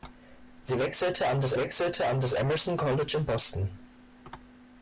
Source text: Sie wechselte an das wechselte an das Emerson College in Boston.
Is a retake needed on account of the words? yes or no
no